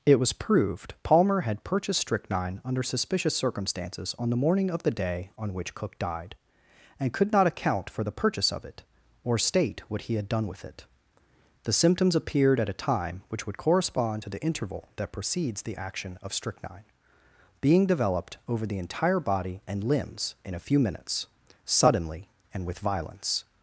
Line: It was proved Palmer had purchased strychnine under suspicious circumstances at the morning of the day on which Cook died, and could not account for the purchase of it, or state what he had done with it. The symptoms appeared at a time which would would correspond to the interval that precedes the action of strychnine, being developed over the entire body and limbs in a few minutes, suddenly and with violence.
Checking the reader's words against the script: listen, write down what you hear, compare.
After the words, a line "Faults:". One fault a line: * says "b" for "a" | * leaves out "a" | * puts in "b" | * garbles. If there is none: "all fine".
It was proved Palmer had purchased strychnine under suspicious circumstances on the morning of the day on which Cook died, and could not account for the purchase of it, or state what he had done with it. The symptoms appeared at a time which would correspond to the interval that precedes the action of strychnine, being developed over the entire body and limbs in a few minutes, suddenly and with violence.
Faults:
* says "on" for "at"
* leaves out "would"